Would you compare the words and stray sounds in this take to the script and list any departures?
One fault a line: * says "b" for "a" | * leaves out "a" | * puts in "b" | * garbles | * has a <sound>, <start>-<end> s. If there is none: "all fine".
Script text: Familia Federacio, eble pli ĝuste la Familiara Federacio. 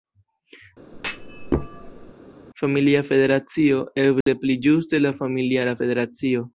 * has a thud, 0.9-2.1 s
* has a dropout, 4.2-4.3 s